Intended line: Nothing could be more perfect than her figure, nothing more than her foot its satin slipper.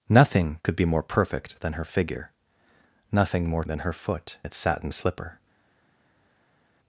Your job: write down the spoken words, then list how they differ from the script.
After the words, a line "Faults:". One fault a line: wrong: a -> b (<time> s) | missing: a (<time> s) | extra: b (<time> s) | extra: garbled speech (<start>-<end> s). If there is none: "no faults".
Nothing could be more perfect than her figure, nothing more than her foot its satin slipper.
Faults:
no faults